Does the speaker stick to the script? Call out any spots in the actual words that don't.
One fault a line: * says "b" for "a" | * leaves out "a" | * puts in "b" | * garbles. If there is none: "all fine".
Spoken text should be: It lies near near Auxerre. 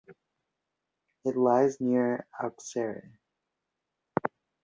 * leaves out "near"